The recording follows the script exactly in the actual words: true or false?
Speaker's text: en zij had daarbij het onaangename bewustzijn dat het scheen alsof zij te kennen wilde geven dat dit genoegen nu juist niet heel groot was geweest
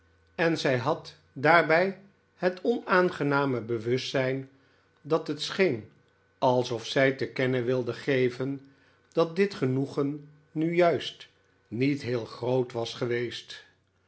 true